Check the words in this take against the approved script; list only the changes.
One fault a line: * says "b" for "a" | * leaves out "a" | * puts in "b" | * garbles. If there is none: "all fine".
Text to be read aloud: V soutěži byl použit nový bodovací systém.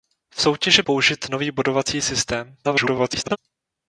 * leaves out "byl"
* garbles